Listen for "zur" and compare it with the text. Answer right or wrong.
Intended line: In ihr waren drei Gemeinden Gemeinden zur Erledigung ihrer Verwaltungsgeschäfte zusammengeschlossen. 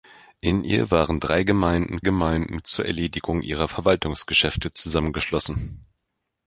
right